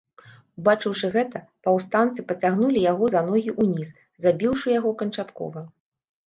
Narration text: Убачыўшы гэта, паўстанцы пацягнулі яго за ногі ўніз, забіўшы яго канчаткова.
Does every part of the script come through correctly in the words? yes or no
yes